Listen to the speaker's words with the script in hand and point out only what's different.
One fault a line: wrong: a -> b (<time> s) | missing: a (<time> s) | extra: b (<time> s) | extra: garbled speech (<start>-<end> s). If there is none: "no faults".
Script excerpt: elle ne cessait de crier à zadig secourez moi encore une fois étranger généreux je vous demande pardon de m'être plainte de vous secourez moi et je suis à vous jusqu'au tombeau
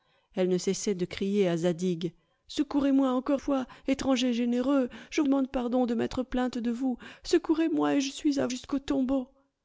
missing: une (3.4 s)
missing: vous (5.2 s)
missing: vous (8.5 s)